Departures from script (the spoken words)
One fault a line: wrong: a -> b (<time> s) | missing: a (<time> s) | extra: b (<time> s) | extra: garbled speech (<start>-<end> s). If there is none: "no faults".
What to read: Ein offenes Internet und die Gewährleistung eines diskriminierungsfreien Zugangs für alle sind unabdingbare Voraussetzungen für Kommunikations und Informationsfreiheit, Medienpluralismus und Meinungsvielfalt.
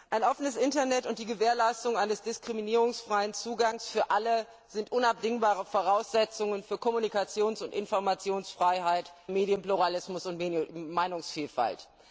no faults